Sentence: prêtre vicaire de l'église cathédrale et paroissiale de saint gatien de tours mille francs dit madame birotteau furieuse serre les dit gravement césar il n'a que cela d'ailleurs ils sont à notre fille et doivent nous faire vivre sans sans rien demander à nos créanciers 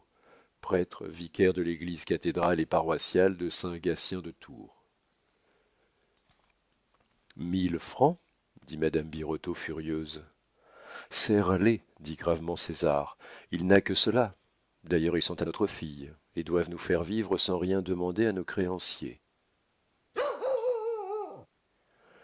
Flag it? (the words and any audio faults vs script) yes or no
yes